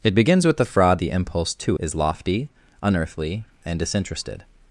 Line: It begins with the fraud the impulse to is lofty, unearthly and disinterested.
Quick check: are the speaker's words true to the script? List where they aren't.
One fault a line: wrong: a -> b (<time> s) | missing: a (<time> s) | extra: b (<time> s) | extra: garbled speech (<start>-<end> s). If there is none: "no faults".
no faults